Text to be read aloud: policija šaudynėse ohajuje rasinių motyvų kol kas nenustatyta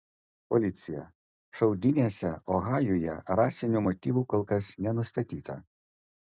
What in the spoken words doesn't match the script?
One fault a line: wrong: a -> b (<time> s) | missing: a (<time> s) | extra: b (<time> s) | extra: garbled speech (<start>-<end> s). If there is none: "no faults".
no faults